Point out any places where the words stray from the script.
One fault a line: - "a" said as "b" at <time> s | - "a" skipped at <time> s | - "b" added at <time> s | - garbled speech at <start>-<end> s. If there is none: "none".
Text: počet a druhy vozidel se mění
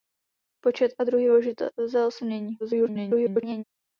- garbled speech at 2.6-3.6 s